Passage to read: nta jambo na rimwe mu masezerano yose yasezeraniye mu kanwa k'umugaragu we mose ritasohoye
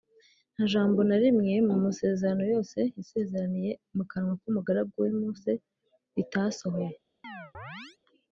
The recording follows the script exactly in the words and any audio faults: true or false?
false